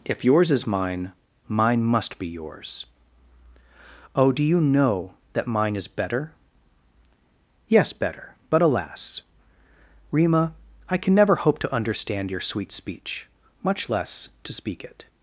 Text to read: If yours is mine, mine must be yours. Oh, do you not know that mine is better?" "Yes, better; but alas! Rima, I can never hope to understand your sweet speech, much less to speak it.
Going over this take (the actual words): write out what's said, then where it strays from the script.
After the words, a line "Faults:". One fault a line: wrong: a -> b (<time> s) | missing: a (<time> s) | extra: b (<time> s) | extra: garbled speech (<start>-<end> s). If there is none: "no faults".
If yours is mine, mine must be yours. Oh, do you know that mine is better?" "Yes, better; but alas! Rima, I can never hope to understand your sweet speech, much less to speak it.
Faults:
missing: not (4.6 s)